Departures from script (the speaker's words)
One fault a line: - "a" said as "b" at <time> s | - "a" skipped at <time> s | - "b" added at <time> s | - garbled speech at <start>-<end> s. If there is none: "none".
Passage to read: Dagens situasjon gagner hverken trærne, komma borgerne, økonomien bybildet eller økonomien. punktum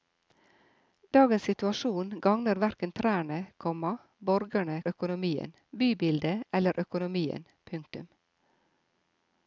none